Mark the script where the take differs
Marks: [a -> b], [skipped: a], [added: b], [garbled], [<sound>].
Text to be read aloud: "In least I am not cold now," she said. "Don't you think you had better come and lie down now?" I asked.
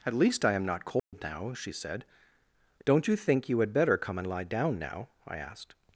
["In -> At] least I am not cold [dropout] now," she said. "Don't you think you had better come and lie down now?" I asked.